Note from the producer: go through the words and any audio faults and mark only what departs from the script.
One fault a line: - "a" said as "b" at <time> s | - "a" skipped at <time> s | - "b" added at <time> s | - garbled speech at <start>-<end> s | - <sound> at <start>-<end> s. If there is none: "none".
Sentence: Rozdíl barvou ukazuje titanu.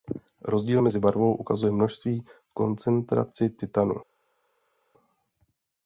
- "mezi" added at 0.8 s
- "množství koncentraci" added at 1.7 s